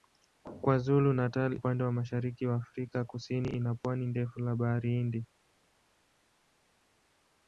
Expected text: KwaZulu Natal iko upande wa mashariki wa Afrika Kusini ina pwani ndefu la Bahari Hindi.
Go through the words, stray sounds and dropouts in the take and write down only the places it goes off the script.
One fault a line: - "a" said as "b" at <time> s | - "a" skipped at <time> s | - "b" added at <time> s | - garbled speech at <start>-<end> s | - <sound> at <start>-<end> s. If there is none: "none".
- "iko" skipped at 1.6 s